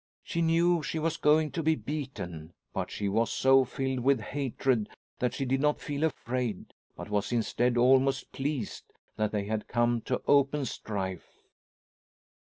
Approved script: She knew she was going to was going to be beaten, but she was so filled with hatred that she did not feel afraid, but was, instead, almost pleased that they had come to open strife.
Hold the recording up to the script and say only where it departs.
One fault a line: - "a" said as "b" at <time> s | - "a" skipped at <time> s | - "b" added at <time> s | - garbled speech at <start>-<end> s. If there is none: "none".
- "was going to" skipped at 1.6 s